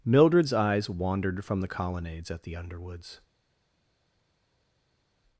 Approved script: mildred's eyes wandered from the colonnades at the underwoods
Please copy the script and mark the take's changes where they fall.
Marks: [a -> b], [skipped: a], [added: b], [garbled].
mildred's eyes wandered from the colonnades at the underwoods